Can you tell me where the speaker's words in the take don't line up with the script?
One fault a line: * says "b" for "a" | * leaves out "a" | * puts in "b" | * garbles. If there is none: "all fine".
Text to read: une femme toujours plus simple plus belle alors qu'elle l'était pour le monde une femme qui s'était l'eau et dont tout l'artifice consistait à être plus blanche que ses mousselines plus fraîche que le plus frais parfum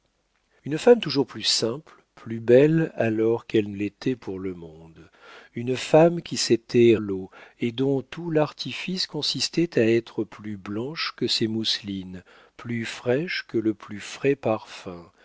all fine